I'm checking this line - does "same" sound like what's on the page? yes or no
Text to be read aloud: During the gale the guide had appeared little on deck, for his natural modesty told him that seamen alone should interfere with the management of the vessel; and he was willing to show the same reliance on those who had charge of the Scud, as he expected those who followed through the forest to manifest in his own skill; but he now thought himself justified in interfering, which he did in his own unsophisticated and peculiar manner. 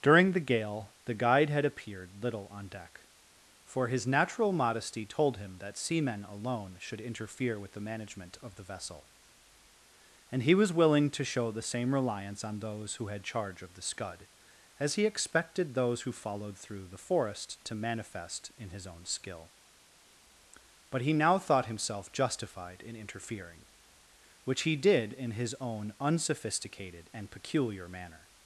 yes